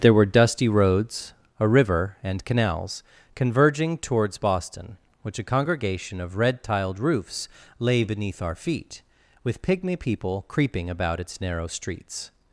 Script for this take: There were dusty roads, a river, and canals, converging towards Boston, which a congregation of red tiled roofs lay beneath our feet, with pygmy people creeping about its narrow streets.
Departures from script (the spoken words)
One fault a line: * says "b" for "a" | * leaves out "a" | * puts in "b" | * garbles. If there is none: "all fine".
all fine